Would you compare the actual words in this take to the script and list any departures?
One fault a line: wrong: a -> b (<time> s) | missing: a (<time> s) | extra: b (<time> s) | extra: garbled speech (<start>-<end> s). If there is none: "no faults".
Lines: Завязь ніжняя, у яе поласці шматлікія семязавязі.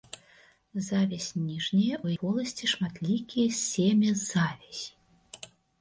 missing: яе (2.1 s)